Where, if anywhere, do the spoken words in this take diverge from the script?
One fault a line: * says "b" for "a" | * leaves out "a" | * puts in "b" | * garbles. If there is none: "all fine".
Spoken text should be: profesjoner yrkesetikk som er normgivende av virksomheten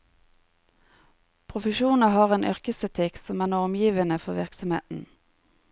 * puts in "har en"
* says "for" for "av"